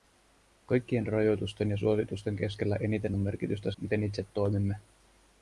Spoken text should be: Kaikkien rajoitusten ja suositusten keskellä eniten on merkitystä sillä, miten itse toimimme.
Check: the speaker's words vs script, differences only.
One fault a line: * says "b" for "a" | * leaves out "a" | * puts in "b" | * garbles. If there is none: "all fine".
* leaves out "sillä"